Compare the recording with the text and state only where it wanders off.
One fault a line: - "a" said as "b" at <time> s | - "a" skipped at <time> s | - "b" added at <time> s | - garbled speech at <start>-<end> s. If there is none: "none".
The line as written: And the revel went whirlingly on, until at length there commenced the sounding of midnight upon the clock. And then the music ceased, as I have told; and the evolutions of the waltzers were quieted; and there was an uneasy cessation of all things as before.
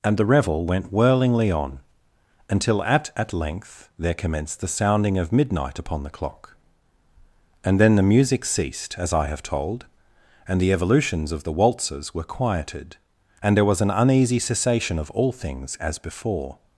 - "at" added at 3.1 s